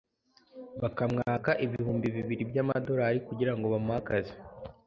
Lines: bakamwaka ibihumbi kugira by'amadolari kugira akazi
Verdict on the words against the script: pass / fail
fail